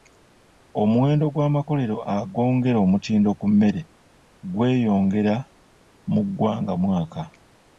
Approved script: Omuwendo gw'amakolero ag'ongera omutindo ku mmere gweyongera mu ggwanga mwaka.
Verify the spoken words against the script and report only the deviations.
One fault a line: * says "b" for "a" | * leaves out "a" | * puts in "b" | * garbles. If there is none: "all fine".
all fine